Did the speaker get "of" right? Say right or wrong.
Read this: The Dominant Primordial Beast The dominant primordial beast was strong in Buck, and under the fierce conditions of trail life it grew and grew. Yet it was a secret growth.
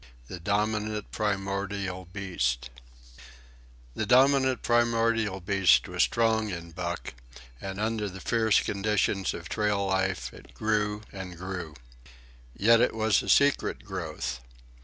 right